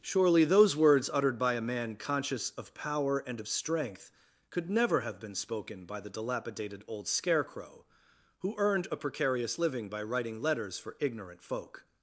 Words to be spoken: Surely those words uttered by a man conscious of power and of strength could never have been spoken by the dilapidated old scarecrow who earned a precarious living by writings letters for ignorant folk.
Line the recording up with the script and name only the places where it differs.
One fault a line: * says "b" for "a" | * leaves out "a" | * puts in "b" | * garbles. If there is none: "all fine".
* says "writing" for "writings"